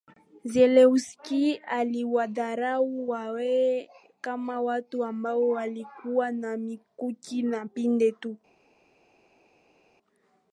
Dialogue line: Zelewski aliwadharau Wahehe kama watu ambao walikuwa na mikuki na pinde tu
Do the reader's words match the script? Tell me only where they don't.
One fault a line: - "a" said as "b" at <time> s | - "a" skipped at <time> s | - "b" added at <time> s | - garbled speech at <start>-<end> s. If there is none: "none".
none